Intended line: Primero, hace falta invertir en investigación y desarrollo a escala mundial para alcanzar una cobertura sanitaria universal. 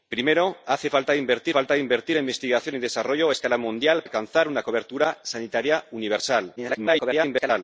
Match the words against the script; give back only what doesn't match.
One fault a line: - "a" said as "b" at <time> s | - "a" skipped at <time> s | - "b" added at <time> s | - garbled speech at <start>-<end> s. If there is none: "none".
- "falta invertir" added at 1.5 s
- "para" skipped at 4.0 s
- garbled speech at 6.6-7.6 s